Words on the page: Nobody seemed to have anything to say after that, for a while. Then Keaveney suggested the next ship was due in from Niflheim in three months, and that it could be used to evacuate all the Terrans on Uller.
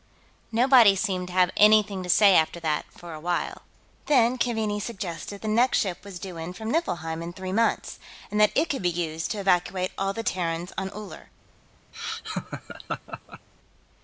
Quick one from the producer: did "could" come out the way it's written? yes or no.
yes